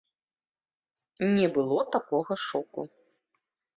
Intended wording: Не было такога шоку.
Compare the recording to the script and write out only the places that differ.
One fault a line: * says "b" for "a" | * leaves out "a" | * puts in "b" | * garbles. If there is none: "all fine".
all fine